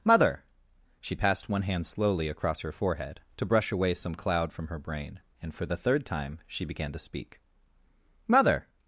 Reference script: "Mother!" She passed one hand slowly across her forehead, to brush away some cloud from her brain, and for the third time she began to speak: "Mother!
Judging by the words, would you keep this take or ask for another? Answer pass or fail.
pass